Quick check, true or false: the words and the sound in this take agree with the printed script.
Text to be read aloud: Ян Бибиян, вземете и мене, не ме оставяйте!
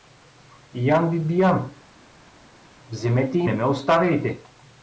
false